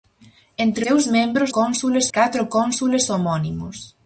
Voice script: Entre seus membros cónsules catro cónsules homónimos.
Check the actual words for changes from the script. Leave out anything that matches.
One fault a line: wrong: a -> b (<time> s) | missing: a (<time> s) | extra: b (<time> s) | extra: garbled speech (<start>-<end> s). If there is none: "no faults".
no faults